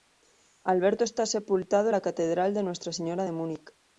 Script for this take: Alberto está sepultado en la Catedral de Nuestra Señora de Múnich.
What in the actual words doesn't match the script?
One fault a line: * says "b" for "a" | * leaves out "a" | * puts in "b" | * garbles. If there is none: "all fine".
all fine